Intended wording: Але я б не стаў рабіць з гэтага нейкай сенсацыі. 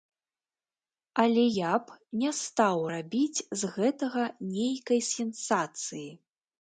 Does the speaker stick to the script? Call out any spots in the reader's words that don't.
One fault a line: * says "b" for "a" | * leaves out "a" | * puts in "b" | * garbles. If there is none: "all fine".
all fine